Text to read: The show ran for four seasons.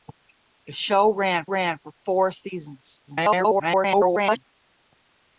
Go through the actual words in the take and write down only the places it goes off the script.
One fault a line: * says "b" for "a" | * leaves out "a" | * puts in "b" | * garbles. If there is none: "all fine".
* puts in "ran"
* garbles